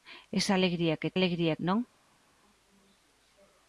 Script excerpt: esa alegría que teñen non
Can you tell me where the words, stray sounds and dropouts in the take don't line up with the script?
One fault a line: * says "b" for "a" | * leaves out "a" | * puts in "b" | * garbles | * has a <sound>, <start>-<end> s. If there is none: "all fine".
* says "alegría" for "teñen"